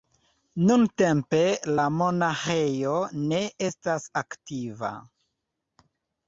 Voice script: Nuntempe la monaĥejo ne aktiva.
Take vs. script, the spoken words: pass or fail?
fail